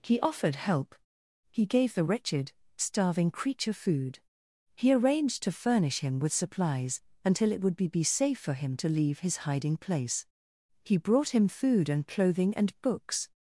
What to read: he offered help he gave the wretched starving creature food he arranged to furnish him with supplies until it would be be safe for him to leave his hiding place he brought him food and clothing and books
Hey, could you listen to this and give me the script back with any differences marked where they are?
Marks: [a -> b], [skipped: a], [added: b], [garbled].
he offered help he gave the wretched starving creature food he arranged to furnish him with supplies until it would be be safe for him to leave his hiding place he brought him food and clothing and books